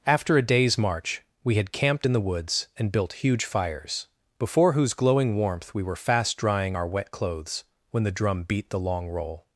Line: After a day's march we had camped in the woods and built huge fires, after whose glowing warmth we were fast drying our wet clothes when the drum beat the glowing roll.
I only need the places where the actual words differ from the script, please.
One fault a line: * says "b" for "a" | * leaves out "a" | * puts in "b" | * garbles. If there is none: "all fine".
* says "before" for "after"
* says "long" for "glowing"